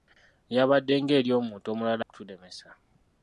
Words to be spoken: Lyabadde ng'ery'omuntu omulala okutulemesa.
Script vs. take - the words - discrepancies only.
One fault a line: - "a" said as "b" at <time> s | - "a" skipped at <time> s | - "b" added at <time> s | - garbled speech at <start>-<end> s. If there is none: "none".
none